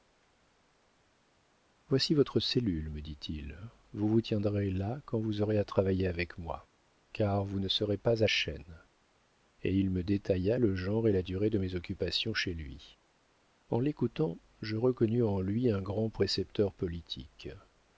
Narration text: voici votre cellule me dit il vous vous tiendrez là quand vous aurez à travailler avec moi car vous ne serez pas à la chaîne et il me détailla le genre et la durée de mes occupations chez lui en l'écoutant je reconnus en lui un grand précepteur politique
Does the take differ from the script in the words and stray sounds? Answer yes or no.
yes